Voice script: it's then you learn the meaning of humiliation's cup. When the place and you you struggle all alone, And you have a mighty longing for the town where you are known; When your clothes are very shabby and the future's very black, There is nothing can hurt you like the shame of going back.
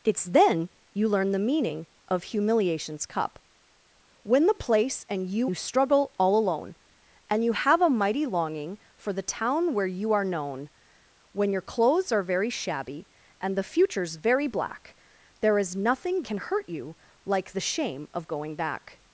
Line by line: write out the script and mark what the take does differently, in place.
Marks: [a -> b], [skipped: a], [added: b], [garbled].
it's then you learn the meaning of humiliation's cup. When the place and you you struggle all alone, And you have a mighty longing for the town where you are known; When your clothes are very shabby and the future's very black, There is nothing can hurt you like the shame of going back.